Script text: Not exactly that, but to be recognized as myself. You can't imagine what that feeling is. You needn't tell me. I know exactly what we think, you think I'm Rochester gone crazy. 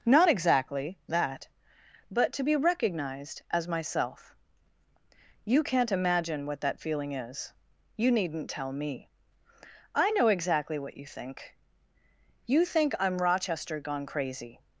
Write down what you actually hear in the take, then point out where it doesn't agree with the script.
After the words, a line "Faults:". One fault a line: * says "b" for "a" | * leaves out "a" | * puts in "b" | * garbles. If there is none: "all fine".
Not exactly that, but to be recognized as myself. You can't imagine what that feeling is. You needn't tell me. I know exactly what you think, you think I'm Rochester gone crazy.
Faults:
* says "you" for "we"